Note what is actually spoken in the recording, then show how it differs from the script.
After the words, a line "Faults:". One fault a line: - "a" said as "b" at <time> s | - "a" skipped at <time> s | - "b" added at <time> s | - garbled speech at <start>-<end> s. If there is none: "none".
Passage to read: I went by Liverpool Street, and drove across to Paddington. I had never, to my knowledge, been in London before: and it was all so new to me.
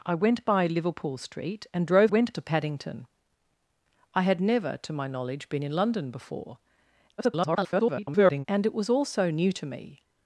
I went by Liverpool Street, and drove went to Paddington. I had never, to my knowledge, been in London before: [garbled] and it was all so new to me.
Faults:
- "across" said as "went" at 2.1 s
- garbled speech at 7.2-8.5 s